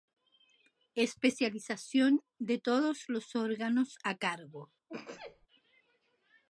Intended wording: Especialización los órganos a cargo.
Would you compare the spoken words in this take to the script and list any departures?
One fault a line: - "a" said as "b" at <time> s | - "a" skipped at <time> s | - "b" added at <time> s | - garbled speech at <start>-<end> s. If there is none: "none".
- "de todos" added at 2.4 s